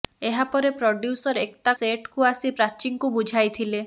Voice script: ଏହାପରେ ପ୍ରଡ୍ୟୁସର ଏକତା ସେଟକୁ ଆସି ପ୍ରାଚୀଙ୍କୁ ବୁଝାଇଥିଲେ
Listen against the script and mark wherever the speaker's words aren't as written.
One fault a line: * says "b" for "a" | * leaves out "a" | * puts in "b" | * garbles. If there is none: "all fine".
all fine